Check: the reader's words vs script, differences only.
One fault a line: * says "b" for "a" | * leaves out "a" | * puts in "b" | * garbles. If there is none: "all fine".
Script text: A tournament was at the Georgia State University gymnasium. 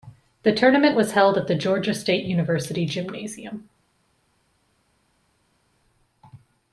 * says "The" for "A"
* puts in "held"